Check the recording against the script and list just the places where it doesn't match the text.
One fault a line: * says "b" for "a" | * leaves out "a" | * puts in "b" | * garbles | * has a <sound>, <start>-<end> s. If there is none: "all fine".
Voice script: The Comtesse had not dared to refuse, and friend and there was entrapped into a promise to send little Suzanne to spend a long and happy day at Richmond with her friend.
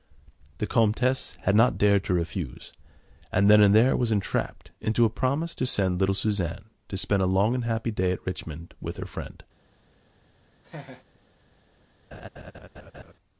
* says "then" for "friend"
* has a laugh, 10.6-11.0 s
* has a laugh, 12.1-13.1 s